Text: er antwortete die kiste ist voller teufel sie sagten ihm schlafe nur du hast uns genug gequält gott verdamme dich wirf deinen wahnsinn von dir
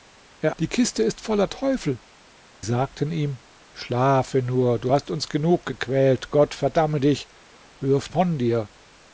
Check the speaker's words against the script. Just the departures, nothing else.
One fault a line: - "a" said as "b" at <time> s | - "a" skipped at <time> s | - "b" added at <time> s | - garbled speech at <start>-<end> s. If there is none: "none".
- "antwortete" skipped at 0.6 s
- "sie" skipped at 2.0 s
- "deinen wahnsinn" skipped at 8.1 s